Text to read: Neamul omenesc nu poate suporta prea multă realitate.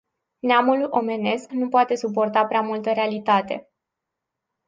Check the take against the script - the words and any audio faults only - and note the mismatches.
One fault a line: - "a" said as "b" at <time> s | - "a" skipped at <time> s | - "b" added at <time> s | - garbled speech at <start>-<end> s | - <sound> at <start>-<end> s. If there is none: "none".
none